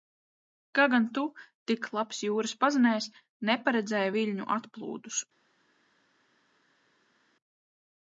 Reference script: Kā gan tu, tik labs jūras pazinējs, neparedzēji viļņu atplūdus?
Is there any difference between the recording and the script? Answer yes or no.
no